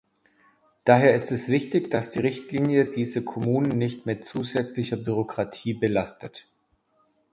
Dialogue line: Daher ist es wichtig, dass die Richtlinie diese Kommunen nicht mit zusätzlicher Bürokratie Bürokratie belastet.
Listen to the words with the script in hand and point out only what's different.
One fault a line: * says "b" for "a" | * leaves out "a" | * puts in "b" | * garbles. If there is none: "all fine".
* leaves out "Bürokratie"